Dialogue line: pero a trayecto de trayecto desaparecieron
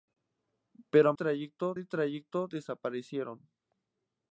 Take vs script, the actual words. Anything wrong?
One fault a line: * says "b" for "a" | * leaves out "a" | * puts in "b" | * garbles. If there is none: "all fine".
all fine